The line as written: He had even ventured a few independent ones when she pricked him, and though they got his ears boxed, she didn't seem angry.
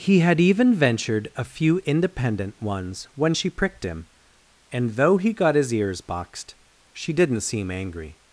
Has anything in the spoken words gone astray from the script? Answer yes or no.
yes